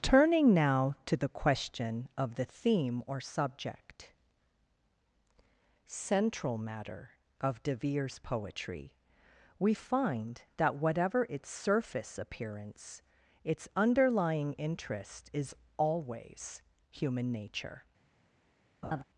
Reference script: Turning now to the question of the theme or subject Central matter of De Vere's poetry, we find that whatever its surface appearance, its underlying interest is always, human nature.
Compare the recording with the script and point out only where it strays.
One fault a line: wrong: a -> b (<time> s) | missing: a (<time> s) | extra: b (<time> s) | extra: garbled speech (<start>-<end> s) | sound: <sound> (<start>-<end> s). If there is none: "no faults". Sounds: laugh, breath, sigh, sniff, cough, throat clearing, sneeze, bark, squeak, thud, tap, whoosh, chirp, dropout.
sound: laugh (18.8-19.0 s)